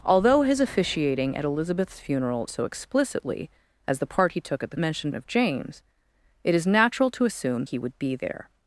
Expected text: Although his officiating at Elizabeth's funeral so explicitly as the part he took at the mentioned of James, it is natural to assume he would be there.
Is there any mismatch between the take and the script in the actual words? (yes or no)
no